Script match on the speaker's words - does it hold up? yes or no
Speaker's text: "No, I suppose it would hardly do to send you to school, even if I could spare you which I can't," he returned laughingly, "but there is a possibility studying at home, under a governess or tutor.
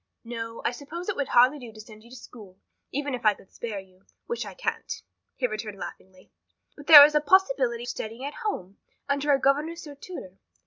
yes